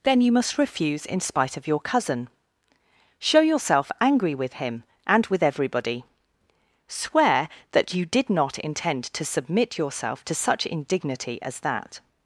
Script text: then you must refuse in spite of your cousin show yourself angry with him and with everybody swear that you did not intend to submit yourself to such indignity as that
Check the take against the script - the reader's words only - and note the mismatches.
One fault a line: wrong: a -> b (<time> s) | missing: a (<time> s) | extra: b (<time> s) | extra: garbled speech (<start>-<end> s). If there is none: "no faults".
no faults